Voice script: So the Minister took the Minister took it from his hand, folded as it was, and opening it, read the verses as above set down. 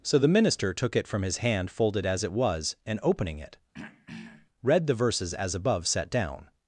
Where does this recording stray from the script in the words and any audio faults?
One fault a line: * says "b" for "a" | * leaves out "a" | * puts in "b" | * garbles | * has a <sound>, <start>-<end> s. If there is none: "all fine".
* leaves out "the Minister took"
* has a throat clearing, 3.7-4.5 s